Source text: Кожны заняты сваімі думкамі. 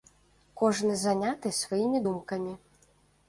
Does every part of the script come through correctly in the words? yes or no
yes